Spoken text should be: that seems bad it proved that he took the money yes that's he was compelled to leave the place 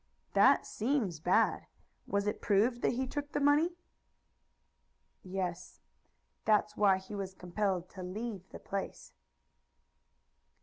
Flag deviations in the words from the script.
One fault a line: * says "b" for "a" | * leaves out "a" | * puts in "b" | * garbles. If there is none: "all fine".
* puts in "was"
* puts in "why"